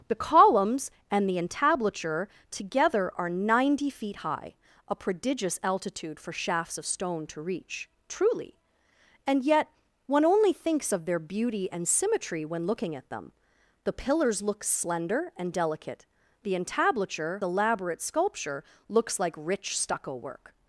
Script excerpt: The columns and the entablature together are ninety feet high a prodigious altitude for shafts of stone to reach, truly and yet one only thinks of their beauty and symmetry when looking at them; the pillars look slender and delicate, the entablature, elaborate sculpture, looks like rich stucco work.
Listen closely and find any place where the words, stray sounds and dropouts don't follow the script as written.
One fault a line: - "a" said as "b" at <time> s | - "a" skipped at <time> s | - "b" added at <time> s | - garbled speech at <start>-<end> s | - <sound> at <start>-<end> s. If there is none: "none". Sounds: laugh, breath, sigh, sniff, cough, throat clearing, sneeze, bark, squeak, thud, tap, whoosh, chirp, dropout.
none